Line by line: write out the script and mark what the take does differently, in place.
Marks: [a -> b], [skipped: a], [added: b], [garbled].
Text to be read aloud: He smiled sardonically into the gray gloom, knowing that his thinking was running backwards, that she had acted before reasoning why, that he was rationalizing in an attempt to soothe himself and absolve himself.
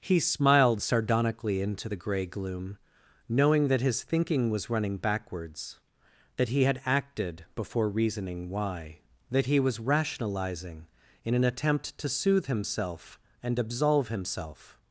He smiled sardonically into the gray gloom, knowing that his thinking was running backwards, that [she -> he] had acted before reasoning why, that he was rationalizing in an attempt to soothe himself and absolve himself.